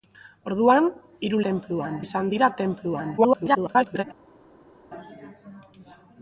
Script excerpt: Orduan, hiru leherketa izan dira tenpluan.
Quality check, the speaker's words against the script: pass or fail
fail